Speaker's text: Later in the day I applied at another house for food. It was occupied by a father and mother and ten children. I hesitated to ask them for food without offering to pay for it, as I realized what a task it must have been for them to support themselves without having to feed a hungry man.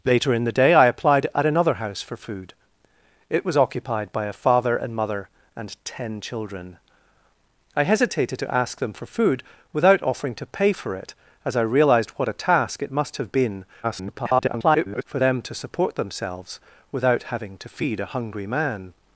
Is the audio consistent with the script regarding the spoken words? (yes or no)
no